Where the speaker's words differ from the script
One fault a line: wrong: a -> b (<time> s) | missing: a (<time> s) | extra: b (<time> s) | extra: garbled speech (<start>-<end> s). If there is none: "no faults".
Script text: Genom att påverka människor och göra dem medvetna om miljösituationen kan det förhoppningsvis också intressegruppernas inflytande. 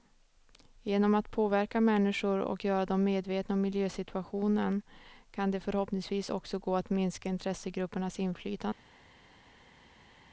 extra: gå att minska (6.6 s)